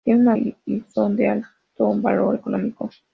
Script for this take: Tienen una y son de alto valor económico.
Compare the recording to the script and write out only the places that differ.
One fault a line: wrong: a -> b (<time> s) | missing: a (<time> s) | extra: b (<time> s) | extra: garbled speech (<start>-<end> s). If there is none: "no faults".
no faults